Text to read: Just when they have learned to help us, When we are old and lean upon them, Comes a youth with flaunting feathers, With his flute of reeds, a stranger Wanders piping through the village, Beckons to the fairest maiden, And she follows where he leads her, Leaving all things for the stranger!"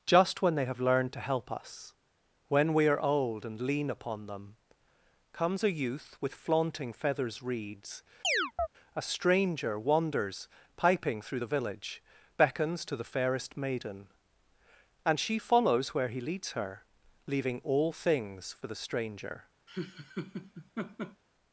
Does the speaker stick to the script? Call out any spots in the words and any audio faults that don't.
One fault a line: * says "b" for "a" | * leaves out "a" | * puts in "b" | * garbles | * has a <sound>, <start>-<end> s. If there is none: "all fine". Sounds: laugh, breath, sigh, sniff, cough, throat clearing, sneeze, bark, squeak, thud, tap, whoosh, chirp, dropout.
* leaves out "With his flute of"
* has a chirp, 8.2-8.7 s
* has a laugh, 19.7-21.2 s